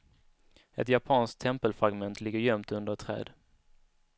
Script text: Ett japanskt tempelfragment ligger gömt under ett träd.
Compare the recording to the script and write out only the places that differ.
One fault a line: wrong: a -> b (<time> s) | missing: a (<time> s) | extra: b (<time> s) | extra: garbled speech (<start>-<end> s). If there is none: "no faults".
no faults